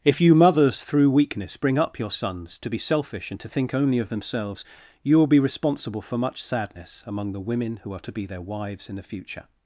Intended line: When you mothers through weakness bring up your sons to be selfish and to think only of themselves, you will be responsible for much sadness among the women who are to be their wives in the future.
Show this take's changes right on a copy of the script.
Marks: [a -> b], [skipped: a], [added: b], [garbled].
[When -> If] you mothers through weakness bring up your sons to be selfish and to think only of themselves, you will be responsible for much sadness among the women who are to be their wives in the future.